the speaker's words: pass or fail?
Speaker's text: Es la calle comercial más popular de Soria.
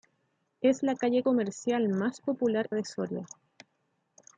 pass